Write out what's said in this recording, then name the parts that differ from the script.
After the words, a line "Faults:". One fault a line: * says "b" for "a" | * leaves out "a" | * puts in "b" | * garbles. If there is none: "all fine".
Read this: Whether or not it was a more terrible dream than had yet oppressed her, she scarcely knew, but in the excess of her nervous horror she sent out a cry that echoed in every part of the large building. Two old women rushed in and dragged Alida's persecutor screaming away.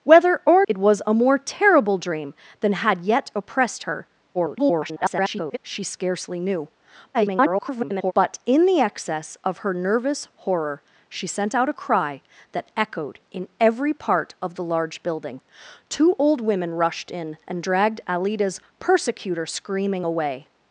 Whether or it was a more terrible dream than had yet oppressed her, [garbled] she scarcely knew, [garbled] but in the excess of her nervous horror she sent out a cry that echoed in every part of the large building. Two old women rushed in and dragged Alida's persecutor screaming away.
Faults:
* leaves out "not"
* garbles
* garbles